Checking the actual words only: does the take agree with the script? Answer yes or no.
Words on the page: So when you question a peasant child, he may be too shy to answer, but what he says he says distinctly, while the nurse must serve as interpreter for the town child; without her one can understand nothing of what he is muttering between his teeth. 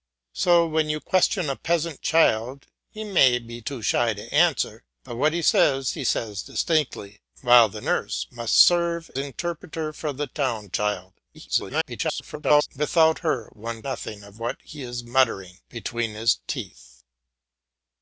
no